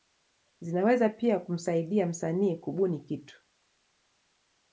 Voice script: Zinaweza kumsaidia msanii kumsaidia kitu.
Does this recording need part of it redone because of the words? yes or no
yes